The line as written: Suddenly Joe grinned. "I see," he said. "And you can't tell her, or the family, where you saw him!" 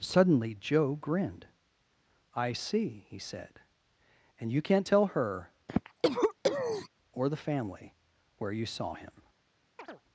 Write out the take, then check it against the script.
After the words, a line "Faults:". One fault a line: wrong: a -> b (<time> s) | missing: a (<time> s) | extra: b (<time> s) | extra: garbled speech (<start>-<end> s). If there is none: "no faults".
Suddenly Joe grinned. "I see," he said. "And you can't tell her, or the family, where you saw him!"
Faults:
no faults